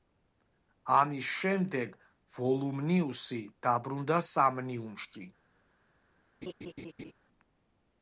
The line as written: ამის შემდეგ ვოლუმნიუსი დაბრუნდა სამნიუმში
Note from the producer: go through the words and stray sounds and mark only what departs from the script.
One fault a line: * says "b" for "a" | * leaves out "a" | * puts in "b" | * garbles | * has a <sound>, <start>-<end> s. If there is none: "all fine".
* has a laugh, 6.4-7.1 s